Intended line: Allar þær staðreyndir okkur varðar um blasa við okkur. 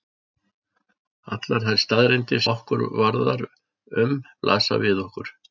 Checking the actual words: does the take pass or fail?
pass